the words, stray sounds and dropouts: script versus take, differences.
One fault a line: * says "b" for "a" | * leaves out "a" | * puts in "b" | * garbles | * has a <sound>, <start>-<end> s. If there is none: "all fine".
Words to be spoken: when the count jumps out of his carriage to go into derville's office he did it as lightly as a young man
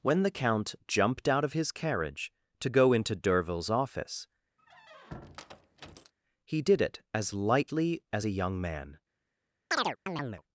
* says "jumped" for "jumps"
* has a squeak, 4.6-6.1 s
* has a chirp, 9.7-10.4 s